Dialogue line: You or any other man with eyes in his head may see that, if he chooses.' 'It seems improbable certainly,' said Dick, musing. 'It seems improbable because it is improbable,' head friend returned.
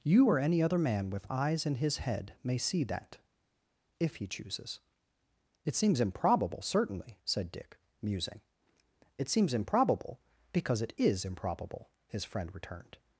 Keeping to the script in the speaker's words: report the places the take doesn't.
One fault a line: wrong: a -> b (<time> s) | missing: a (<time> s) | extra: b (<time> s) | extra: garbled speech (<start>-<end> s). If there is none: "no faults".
wrong: head -> his (12.1 s)